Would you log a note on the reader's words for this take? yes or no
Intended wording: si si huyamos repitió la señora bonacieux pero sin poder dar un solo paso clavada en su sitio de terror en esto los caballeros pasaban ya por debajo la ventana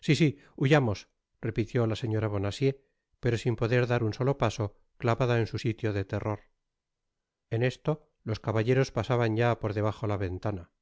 no